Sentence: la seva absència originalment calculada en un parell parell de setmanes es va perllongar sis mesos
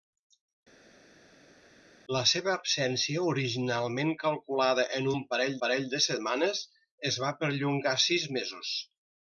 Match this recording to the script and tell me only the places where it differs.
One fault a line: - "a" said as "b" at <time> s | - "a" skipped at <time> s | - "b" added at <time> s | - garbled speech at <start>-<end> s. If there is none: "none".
none